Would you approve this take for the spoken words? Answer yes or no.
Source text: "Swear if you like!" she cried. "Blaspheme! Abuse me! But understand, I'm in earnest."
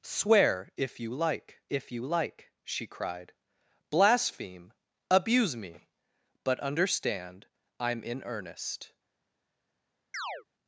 no